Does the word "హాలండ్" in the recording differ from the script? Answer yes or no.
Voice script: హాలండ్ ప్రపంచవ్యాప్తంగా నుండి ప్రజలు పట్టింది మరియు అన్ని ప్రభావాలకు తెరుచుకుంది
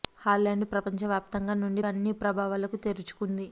no